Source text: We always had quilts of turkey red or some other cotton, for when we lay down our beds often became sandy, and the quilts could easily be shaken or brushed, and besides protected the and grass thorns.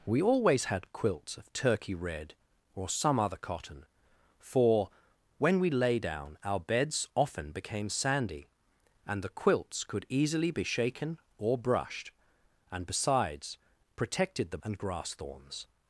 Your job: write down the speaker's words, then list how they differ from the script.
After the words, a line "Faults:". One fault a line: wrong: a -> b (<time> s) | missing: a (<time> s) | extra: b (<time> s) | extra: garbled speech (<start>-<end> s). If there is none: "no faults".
We always had quilts of turkey red or some other cotton, for when we lay down our beds often became sandy, and the quilts could easily be shaken or brushed, and besides protected the and grass thorns.
Faults:
no faults